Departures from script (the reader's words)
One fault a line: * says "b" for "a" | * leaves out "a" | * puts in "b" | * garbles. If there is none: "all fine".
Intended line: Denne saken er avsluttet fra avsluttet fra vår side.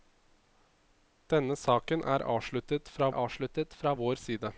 all fine